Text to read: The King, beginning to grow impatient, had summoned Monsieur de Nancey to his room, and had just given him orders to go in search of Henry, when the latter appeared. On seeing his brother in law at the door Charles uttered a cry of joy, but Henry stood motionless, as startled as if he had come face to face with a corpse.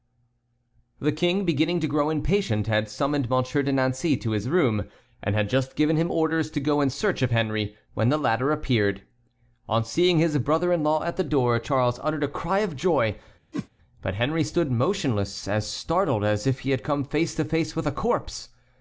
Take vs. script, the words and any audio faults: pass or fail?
fail